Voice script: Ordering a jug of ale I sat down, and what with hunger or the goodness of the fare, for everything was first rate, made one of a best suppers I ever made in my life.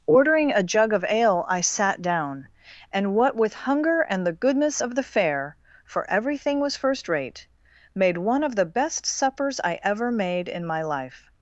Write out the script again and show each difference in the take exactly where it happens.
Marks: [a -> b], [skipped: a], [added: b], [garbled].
Ordering a jug of ale I sat down, and what with hunger [or -> and] the goodness of the fare, for everything was first rate, made one of [a -> the] best suppers I ever made in my life.